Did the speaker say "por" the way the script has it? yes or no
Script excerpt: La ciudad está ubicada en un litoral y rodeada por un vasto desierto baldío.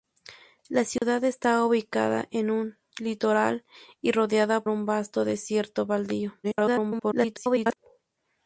no